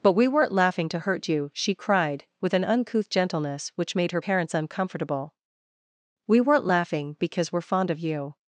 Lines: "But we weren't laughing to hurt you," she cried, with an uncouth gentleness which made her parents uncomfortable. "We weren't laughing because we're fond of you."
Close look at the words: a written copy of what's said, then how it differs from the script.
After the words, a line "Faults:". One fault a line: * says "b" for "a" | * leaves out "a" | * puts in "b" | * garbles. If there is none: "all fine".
"But we weren't laughing to hurt you," she cried, with an uncouth gentleness which made her parents uncomfortable. "We weren't laughing because we're fond of you."
Faults:
all fine